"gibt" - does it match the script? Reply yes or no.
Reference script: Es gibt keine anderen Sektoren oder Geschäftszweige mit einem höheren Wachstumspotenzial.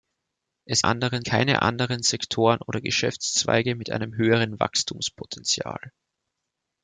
no